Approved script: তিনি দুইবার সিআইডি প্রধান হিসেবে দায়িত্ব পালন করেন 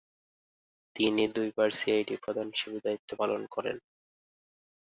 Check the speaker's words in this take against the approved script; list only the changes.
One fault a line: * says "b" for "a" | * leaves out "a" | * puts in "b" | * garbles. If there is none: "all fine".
all fine